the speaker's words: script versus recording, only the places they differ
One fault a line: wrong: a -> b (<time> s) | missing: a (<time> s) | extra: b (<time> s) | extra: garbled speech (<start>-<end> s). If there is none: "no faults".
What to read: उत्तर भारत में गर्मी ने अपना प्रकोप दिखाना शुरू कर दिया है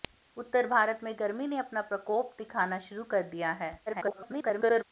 extra: garbled speech (3.9-4.8 s)